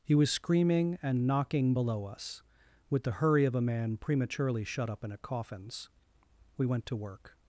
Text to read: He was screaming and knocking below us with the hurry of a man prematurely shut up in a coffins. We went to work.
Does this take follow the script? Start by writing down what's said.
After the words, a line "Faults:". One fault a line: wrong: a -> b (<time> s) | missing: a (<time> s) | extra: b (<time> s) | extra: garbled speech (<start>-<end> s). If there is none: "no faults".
He was screaming and knocking below us with the hurry of a man prematurely shut up in a coffins. We went to work.
Faults:
no faults